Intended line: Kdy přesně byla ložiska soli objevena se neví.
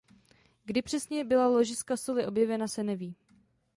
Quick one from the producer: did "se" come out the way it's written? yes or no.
yes